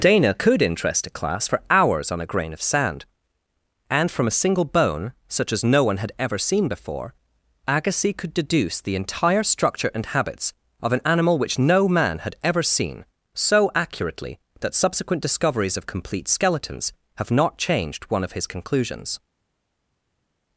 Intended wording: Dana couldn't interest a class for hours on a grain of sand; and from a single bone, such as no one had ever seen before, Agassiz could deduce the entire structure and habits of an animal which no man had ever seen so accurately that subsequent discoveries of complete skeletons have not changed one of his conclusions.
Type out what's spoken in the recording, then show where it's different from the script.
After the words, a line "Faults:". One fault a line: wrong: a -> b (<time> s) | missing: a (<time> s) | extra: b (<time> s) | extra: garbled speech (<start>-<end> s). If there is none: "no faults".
Dana could interest a class for hours on a grain of sand; and from a single bone, such as no one had ever seen before, Agassiz could deduce the entire structure and habits of an animal which no man had ever seen so accurately that subsequent discoveries of complete skeletons have not changed one of his conclusions.
Faults:
wrong: couldn't -> could (0.3 s)